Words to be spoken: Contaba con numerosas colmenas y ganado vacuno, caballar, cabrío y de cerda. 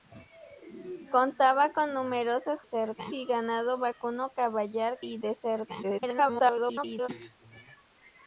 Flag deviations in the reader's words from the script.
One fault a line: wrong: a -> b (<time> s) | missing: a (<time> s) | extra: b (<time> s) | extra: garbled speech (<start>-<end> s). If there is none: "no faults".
wrong: colmenas -> cerda (2.6 s)
missing: cabrío (5.0 s)
extra: garbled speech (5.8-7.1 s)